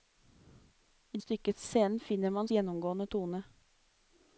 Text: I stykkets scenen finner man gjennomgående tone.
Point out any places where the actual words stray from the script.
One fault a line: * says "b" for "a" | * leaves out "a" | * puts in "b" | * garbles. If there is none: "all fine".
all fine